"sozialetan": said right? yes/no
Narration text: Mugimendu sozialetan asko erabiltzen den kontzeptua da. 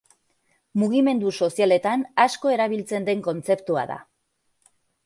yes